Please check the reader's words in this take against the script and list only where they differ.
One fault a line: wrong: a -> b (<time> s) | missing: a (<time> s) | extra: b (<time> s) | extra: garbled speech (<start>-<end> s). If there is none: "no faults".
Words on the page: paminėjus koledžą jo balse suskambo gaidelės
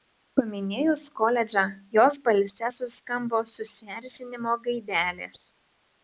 wrong: jo -> jos (2.0 s)
extra: susierzinimo (3.5 s)